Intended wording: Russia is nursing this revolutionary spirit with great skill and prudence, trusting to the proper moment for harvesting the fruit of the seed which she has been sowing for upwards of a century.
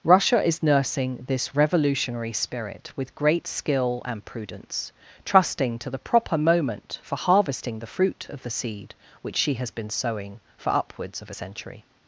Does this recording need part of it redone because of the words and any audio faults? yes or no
no